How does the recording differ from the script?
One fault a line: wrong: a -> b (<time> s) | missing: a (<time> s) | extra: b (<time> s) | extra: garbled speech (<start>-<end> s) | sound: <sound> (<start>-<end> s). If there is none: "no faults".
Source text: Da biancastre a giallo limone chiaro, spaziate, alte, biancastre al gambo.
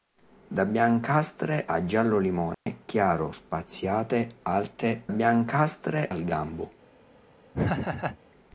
sound: dropout (2.5-2.7 s)
sound: laugh (7.5-8.2 s)